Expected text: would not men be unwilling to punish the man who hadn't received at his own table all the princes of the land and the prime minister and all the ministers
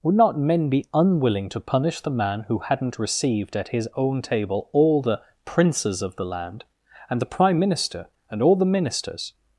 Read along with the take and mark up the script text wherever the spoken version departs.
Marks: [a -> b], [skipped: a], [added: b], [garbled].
would not men be unwilling to punish the man who hadn't received at his own table all the princes of the land and the prime minister and all the ministers